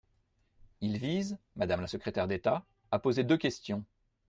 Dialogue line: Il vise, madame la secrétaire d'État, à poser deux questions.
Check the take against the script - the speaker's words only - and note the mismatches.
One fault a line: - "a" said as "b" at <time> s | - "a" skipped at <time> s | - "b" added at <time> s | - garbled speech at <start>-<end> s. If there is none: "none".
none